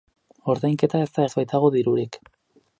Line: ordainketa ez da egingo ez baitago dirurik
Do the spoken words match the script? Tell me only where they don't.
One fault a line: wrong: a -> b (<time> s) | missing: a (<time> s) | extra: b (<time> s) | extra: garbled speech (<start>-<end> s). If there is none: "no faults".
missing: egingo (1.3 s)